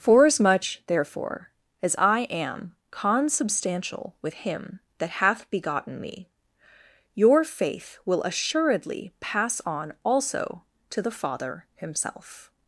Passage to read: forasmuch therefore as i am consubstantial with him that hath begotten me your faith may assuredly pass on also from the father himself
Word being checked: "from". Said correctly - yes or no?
no